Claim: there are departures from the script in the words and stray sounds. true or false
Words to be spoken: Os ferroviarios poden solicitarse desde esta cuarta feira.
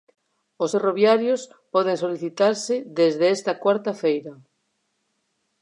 false